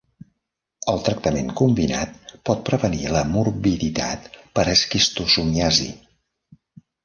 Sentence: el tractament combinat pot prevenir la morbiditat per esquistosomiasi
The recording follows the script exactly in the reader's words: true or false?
true